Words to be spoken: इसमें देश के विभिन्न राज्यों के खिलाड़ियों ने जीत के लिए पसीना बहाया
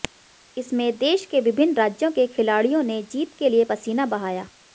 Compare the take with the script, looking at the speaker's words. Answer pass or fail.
pass